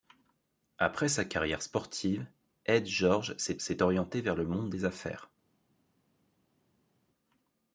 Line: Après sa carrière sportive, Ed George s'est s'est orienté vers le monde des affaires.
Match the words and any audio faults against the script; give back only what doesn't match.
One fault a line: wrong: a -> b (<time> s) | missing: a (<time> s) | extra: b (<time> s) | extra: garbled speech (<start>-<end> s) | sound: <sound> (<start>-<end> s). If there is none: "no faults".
no faults